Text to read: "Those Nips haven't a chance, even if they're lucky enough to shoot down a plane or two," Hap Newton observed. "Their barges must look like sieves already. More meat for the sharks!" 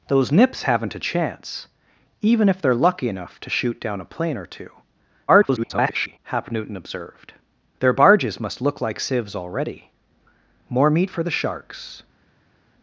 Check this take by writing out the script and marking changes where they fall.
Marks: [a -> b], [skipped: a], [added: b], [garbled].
"Those Nips haven't a chance, even if they're lucky enough to shoot down a plane or two," [garbled] Hap Newton observed. "Their barges must look like sieves already. More meat for the sharks!"